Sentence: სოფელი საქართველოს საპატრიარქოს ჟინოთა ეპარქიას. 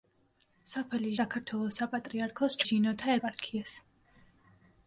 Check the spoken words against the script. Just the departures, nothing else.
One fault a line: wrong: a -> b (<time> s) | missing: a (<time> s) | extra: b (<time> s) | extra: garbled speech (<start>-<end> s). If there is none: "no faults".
no faults